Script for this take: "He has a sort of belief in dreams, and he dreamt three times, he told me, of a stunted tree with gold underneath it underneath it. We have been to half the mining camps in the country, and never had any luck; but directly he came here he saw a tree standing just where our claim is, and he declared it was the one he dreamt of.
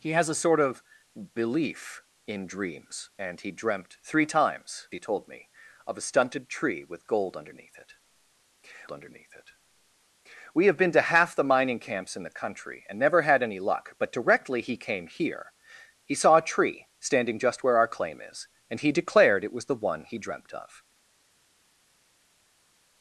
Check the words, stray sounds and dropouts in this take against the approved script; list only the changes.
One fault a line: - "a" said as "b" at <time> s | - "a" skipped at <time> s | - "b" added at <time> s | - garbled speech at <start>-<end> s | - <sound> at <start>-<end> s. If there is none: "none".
none